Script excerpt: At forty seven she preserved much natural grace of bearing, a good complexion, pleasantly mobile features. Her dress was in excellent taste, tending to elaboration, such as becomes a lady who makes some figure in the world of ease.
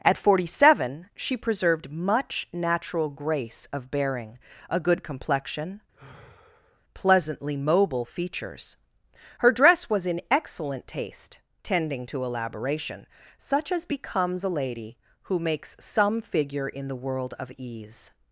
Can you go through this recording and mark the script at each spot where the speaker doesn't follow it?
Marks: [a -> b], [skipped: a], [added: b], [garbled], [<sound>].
At forty seven she preserved much natural grace of bearing, a good complexion, [sigh] pleasantly mobile features. Her dress was in excellent taste, tending to elaboration, such as becomes a lady who makes some figure in the world of ease.